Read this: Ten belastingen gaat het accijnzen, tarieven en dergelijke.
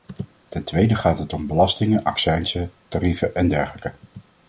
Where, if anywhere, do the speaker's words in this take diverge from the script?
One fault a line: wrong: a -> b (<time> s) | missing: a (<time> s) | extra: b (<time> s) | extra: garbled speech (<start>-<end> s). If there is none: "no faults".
wrong: belastingen -> tweede (0.6 s)
extra: om belastingen (1.3 s)